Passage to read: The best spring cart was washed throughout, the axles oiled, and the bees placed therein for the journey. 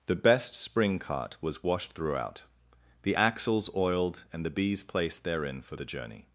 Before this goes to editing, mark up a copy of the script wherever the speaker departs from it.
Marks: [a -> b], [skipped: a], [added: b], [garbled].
The best spring cart was washed throughout, the axles oiled, and the bees placed therein for the journey.